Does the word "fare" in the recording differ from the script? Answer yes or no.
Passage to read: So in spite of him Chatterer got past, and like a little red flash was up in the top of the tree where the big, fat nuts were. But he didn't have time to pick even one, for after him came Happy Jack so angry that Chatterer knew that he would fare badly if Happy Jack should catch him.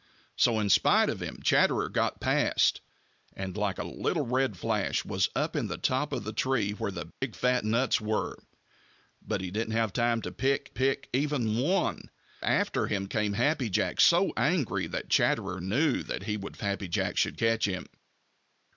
yes